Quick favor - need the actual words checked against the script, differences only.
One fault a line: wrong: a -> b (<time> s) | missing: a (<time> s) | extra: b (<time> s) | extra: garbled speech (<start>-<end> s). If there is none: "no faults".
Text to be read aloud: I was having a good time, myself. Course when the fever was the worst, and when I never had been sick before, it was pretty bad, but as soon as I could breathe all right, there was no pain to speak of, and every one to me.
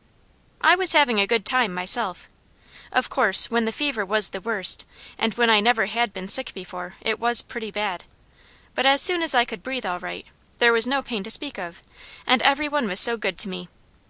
extra: Of (2.9 s)
extra: was so good (12.9 s)